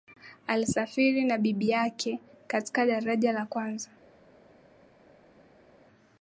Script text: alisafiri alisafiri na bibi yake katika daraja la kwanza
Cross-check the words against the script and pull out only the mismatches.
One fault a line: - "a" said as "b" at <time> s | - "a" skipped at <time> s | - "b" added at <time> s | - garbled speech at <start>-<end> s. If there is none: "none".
- "alisafiri" skipped at 1.2 s